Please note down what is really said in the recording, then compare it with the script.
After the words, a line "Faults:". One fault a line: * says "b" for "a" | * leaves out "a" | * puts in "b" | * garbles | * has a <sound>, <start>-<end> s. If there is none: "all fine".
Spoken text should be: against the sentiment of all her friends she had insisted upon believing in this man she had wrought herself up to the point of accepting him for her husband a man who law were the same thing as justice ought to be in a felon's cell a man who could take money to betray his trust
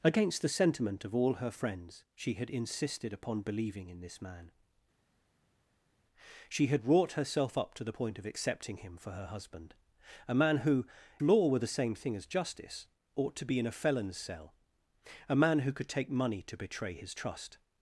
against the sentiment of all her friends she had insisted upon believing in this man she had wrought herself up to the point of accepting him for her husband a man who law were the same thing as justice ought to be in a felon's cell a man who could take money to betray his trust
Faults:
all fine